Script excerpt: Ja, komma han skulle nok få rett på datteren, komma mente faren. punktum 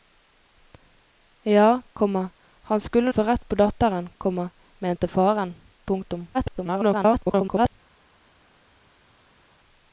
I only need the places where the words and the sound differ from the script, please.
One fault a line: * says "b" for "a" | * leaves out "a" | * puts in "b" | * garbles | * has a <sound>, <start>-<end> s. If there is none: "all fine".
* leaves out "nok"
* garbles